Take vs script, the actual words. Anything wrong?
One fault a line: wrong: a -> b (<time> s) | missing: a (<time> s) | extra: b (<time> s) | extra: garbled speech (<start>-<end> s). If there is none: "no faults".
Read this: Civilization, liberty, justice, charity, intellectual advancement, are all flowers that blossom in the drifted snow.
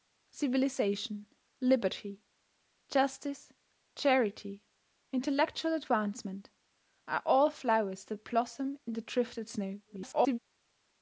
extra: garbled speech (9.9-10.4 s)